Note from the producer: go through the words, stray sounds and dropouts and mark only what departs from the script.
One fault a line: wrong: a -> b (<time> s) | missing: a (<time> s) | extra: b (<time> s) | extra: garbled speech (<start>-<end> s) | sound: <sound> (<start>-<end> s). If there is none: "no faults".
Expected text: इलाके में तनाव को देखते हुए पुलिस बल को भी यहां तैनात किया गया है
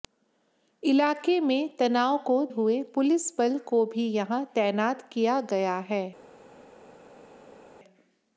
missing: देखते (2.4 s)